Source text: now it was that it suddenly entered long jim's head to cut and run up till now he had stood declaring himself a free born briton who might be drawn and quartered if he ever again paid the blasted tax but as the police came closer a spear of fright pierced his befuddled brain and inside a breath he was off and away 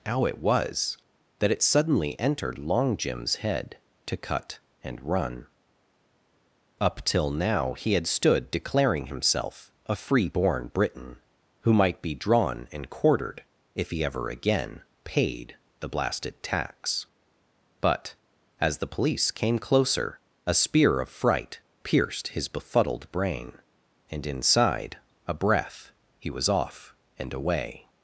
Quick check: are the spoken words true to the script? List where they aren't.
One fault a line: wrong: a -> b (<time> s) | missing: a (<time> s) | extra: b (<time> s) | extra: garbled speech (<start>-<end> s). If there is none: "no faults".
wrong: now -> how (0.1 s)